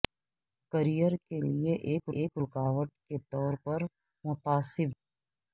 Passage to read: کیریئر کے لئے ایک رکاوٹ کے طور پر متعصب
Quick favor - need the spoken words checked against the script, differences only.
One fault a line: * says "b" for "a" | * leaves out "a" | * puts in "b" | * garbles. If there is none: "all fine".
* puts in "ایک"